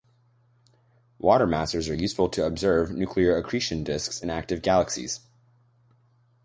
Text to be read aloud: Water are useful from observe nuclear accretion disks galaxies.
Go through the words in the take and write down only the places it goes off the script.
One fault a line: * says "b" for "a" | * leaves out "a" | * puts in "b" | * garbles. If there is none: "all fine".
* puts in "masers"
* says "to" for "from"
* puts in "in active"